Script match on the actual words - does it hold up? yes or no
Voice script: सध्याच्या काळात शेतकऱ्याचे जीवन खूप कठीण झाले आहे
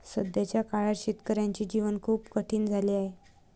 yes